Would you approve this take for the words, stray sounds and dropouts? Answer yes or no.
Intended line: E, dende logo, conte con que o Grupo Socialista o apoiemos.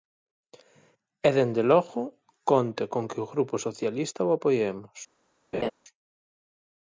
no